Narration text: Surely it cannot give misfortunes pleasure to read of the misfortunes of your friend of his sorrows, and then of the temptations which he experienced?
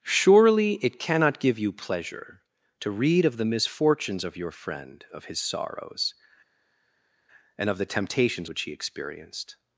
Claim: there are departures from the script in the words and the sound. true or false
true